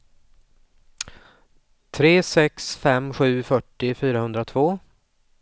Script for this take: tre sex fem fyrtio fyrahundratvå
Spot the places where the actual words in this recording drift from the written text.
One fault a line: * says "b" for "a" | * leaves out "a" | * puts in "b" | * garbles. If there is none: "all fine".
* puts in "sju"